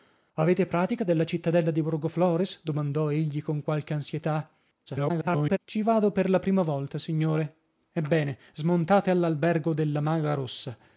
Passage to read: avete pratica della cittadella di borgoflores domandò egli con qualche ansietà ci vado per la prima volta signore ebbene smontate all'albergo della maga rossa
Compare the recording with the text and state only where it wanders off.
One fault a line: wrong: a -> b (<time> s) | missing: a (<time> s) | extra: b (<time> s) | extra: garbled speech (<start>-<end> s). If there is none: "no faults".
extra: garbled speech (4.9-5.6 s)